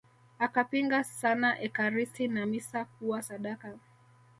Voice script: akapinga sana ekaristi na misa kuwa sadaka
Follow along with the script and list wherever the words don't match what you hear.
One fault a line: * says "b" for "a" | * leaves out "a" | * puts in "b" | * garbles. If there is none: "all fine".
all fine